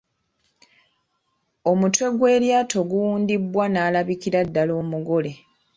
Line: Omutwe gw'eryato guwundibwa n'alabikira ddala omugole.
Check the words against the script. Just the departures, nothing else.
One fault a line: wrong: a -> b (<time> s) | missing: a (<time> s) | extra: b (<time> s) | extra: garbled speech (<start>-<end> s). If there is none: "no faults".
no faults